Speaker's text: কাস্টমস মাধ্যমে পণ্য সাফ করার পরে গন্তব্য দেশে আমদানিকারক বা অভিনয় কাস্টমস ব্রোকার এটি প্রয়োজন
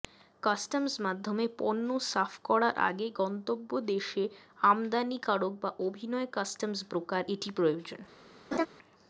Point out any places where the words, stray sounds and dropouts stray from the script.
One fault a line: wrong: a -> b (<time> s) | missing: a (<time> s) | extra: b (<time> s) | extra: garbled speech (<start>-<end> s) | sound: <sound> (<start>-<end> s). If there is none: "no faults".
wrong: পরে -> আগে (2.9 s)
sound: laugh (8.5-8.7 s)